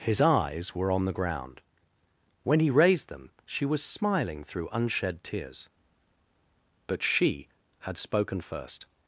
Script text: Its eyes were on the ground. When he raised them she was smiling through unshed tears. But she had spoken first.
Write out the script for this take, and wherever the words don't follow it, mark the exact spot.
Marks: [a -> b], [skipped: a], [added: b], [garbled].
[Its -> His] eyes were on the ground. When he raised them she was smiling through unshed tears. But she had spoken first.